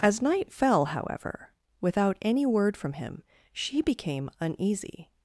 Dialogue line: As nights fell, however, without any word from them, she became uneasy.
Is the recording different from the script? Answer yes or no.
yes